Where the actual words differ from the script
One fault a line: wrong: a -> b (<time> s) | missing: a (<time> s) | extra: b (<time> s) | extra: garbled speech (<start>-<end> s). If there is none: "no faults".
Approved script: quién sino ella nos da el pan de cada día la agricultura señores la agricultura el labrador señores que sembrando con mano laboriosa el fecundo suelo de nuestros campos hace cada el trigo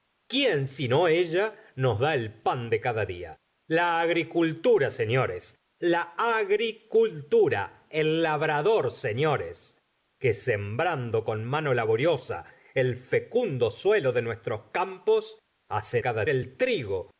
no faults